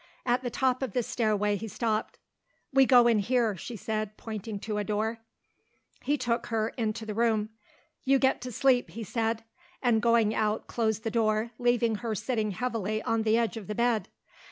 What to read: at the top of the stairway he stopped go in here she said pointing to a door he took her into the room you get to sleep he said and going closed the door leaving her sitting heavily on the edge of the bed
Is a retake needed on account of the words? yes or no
yes